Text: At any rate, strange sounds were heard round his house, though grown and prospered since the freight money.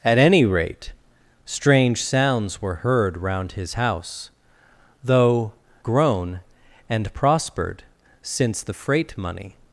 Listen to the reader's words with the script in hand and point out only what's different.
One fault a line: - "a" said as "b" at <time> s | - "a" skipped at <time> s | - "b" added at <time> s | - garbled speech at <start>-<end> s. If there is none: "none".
none